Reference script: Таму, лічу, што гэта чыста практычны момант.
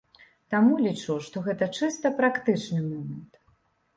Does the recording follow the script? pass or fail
pass